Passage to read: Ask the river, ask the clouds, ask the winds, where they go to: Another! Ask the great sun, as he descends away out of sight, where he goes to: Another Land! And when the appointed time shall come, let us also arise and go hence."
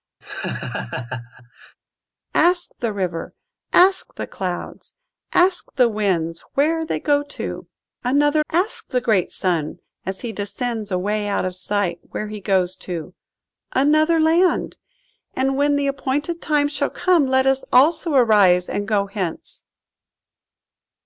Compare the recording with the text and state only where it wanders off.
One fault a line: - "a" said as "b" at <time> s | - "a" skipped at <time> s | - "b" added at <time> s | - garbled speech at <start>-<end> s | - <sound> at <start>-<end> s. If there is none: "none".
- laugh at 0.2-1.8 s